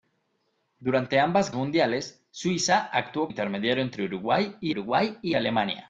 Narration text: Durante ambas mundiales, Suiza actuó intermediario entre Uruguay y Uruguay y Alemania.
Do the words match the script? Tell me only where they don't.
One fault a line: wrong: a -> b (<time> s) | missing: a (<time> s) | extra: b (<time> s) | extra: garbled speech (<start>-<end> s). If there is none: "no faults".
no faults